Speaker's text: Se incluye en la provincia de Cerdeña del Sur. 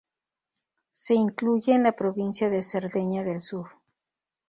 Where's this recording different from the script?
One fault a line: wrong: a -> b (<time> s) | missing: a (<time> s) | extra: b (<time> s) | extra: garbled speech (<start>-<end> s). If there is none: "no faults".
no faults